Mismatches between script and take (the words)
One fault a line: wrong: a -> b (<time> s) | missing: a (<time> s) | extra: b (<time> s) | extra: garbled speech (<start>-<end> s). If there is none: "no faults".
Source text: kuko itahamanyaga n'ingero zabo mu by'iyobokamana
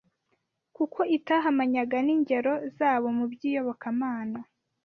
no faults